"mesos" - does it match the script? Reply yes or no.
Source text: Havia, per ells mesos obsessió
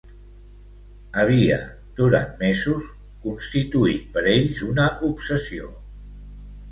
no